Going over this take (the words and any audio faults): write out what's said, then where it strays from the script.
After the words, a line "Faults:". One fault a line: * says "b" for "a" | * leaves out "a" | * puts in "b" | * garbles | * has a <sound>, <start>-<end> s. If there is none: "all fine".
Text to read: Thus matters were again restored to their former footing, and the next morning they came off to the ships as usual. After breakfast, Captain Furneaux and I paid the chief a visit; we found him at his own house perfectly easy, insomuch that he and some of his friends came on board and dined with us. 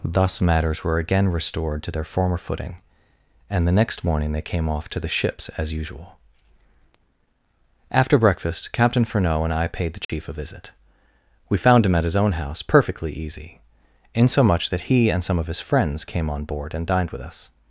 Thus matters were again restored to their former footing, and the next morning they came off to the ships as usual. After breakfast, Captain Furneaux and I paid the chief a visit; we found him at his own house perfectly easy, insomuch that he and some of his friends came on board and dined with us.
Faults:
* has a dropout, 10.0-10.1 s